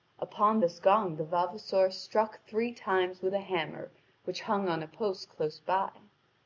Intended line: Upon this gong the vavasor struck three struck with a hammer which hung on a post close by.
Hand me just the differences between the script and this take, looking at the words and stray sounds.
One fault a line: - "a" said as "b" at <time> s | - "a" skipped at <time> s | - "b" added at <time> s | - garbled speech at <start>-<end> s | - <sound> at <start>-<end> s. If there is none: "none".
- "struck" said as "times" at 2.7 s